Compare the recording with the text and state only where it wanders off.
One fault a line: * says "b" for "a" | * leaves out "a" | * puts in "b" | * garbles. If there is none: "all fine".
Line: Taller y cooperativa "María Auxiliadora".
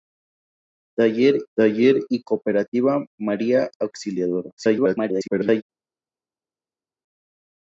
* puts in "taller"
* garbles